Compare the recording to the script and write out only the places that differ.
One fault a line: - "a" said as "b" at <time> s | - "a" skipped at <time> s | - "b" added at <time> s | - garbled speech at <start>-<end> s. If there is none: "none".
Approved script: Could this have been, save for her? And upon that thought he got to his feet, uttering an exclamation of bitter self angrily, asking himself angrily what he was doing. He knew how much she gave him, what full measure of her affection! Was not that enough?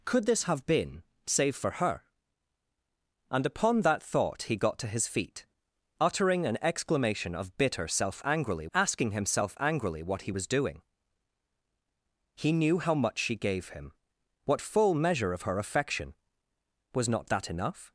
none